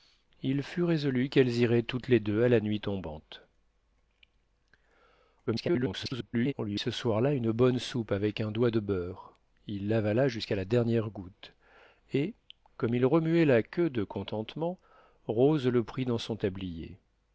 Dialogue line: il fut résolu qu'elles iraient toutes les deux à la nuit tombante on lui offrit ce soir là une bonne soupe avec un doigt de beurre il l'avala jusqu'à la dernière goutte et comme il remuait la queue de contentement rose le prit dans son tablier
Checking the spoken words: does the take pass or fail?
fail